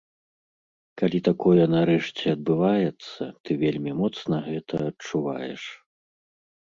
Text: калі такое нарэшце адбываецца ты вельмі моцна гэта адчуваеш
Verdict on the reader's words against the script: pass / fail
pass